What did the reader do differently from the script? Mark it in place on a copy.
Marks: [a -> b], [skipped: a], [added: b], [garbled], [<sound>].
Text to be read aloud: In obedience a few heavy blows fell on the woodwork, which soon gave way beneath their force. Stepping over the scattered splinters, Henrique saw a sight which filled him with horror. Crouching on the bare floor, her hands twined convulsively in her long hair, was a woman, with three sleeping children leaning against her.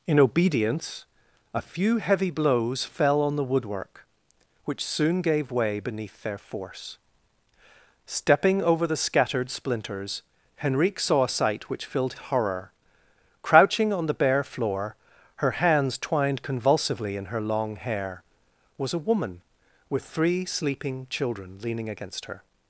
In obedience a few heavy blows fell on the woodwork, which soon gave way beneath their force. Stepping over the scattered splinters, Henrique saw a sight which filled [skipped: him with] horror. Crouching on the bare floor, her hands twined convulsively in her long hair, was a woman, with three sleeping children leaning against her.